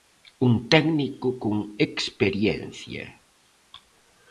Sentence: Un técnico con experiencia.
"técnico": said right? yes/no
yes